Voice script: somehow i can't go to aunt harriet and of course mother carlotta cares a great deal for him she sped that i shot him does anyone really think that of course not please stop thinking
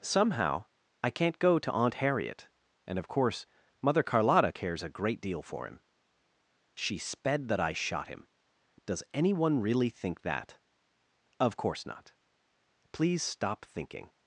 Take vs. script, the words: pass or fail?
pass